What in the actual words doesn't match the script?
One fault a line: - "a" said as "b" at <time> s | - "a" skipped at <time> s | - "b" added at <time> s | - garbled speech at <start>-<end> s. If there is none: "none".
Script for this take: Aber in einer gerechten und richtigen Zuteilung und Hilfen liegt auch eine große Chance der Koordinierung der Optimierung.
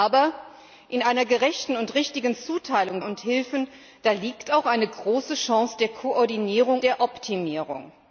none